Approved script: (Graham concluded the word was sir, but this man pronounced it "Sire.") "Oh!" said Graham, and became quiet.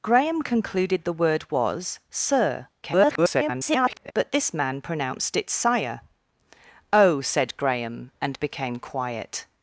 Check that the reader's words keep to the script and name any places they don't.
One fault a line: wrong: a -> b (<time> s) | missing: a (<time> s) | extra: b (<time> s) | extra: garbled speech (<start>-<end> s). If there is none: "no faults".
extra: garbled speech (2.8-4.1 s)